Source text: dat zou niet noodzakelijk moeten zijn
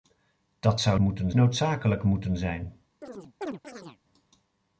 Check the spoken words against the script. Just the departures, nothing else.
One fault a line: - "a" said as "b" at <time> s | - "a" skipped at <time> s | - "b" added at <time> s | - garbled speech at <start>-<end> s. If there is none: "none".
- "niet" said as "moeten" at 1.0 s